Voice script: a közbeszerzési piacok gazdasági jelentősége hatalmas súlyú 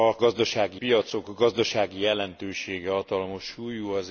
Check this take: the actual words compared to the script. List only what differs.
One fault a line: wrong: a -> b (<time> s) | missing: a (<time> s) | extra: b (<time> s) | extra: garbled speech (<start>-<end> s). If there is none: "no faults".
wrong: közbeszerzési -> gazdasági (0.2 s)